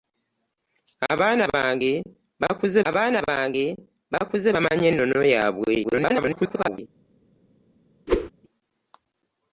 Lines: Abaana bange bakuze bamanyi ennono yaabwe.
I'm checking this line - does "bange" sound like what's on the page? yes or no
yes